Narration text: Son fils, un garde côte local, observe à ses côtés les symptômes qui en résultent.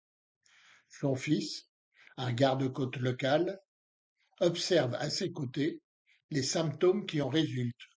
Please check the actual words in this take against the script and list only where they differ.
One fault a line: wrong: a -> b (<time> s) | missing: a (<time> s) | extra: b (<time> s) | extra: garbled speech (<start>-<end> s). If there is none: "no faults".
no faults